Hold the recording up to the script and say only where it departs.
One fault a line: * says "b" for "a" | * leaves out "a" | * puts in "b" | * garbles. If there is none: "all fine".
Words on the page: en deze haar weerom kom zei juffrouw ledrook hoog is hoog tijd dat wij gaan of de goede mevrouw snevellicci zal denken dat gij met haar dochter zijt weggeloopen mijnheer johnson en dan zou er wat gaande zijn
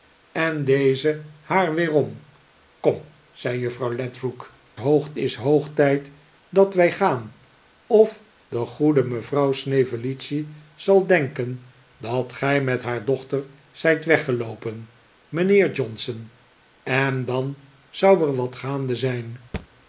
all fine